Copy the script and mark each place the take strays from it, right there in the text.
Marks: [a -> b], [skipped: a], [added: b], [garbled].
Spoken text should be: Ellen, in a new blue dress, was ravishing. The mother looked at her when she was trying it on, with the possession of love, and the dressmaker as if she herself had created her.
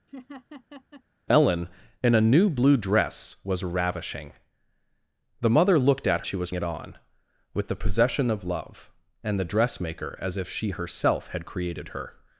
Ellen, in a new blue dress, was ravishing. The mother looked at [skipped: her when] she was [skipped: trying] it on, with the possession of love, and the dressmaker as if she herself had created her.